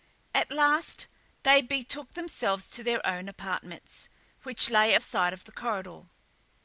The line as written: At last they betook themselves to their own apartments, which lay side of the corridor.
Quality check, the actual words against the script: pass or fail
pass